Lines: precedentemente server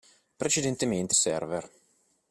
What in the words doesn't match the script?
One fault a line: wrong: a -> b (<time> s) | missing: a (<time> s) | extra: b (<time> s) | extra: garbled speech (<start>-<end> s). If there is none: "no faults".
no faults